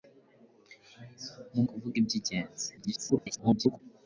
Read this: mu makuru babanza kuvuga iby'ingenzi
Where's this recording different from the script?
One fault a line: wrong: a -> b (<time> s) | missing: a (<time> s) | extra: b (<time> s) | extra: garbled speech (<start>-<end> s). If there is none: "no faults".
missing: makuru babanza (1.6 s)
extra: garbled speech (2.8-3.8 s)